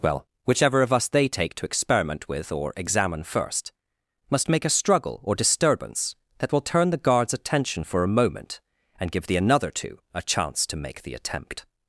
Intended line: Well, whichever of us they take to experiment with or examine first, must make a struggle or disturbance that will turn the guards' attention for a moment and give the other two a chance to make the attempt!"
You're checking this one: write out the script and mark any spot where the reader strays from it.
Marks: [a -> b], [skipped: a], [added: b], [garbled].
Well, whichever of us they take to experiment with or examine first, must make a struggle or disturbance that will turn the guards' attention for a moment and give the [other -> another] two a chance to make the attempt!"